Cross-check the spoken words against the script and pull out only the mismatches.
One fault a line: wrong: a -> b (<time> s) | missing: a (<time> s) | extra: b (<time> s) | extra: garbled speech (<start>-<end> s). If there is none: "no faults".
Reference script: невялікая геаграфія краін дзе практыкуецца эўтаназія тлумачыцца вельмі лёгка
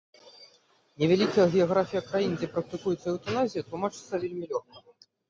no faults